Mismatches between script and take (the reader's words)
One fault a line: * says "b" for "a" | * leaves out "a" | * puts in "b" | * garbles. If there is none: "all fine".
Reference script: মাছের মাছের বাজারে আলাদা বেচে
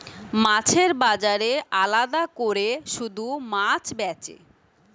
* leaves out "মাছের"
* puts in "কোরে শুধু মাছ"